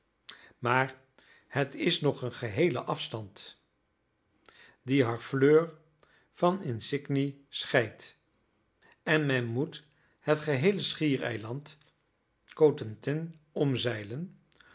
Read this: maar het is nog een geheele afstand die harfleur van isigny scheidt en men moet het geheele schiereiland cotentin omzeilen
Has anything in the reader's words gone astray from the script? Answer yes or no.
no